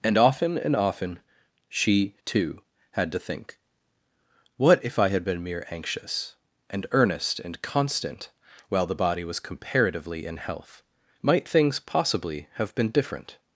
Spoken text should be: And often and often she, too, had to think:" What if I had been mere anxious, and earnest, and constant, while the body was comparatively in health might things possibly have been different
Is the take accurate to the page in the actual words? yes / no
yes